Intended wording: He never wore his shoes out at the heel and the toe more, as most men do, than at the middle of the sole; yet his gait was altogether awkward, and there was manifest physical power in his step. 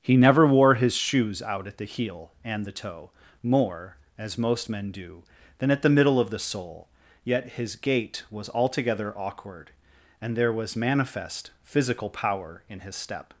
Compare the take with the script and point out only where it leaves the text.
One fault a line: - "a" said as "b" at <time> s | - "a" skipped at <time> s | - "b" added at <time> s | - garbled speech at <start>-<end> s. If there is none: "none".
none